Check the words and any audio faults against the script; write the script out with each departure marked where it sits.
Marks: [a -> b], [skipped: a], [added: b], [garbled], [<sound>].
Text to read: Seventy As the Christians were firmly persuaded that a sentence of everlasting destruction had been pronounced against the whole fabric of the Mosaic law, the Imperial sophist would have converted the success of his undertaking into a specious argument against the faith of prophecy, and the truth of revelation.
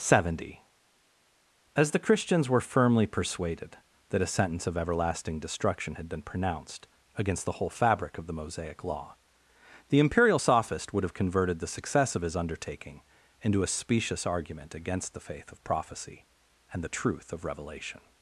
Seventy As the Christians were firmly persuaded that a sentence of everlasting destruction had been pronounced against the whole fabric of the Mosaic law, the Imperial sophist would have converted the success of his undertaking into a specious argument against the faith of prophecy, and the truth of revelation.